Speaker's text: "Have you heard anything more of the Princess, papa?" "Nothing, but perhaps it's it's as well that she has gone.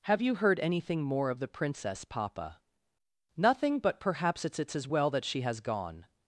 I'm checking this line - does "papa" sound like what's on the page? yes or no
yes